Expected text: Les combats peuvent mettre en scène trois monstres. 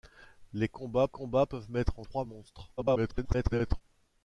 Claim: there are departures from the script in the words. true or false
true